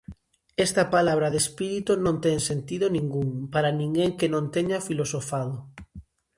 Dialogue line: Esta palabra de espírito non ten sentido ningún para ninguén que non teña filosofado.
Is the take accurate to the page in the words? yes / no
yes